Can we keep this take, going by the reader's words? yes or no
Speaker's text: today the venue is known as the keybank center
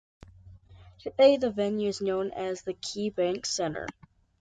yes